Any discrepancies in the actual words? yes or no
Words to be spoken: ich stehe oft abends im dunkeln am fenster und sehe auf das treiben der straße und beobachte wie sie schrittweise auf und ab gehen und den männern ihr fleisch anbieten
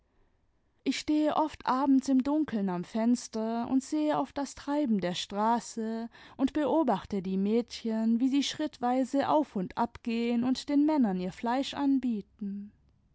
yes